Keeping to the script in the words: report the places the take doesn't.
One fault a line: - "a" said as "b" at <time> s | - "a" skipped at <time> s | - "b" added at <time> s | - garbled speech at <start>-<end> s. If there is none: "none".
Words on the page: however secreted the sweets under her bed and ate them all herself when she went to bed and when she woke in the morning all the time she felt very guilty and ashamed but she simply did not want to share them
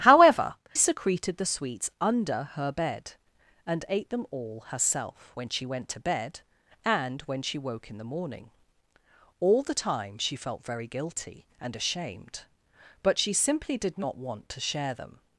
none